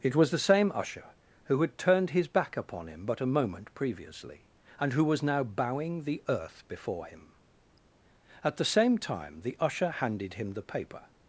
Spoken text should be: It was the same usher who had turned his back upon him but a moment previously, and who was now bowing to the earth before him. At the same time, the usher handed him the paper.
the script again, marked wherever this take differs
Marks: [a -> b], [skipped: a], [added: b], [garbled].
It was the same usher who had turned his back upon him but a moment previously, and who was now bowing [skipped: to] the earth before him. At the same time, the usher handed him the paper.